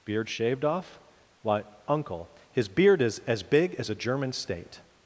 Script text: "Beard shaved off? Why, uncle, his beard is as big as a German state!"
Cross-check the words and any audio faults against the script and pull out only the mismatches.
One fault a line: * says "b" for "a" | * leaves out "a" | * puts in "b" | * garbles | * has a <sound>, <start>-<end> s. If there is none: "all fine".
all fine